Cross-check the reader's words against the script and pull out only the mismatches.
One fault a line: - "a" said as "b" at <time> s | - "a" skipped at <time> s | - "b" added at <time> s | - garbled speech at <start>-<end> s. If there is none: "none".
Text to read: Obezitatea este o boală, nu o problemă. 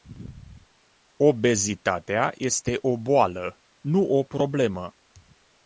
none